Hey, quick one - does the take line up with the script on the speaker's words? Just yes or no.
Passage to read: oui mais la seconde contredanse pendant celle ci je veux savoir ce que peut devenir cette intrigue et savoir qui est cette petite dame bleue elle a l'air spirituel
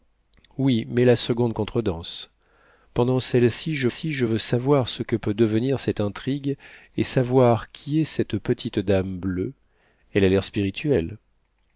no